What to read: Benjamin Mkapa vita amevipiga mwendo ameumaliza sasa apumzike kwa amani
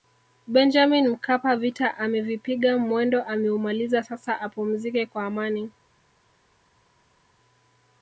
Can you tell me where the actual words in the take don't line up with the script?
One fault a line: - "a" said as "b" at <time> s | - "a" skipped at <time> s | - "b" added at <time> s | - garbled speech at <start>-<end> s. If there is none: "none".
none